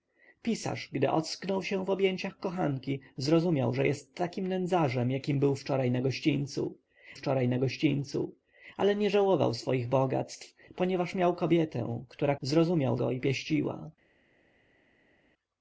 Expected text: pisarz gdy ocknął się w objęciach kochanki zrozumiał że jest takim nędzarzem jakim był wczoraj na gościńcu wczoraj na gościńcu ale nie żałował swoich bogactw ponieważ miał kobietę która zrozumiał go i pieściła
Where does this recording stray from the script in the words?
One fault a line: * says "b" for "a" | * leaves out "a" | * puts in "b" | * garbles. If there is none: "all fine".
all fine